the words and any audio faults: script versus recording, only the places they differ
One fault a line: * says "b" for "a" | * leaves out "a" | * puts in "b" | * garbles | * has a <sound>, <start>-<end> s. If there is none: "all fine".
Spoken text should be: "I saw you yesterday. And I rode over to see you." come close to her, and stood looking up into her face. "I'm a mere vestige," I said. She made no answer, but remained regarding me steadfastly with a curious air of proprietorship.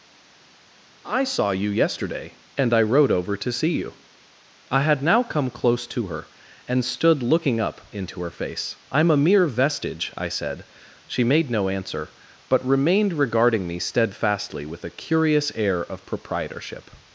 * puts in "I had now"